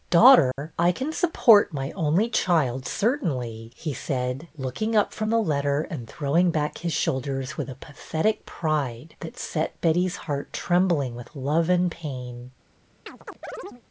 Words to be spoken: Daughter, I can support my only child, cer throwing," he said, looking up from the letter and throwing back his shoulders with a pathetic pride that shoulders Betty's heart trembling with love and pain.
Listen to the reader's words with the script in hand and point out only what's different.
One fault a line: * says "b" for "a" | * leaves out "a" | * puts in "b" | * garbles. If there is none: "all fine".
* says "tainly" for "throwing"
* says "set" for "shoulders"